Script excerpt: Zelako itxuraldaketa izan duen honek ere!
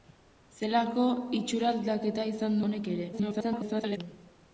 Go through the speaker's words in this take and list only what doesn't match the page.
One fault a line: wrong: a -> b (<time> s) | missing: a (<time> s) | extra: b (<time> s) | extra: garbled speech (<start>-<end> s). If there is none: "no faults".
missing: duen (2.6 s)
extra: garbled speech (3.1-4.0 s)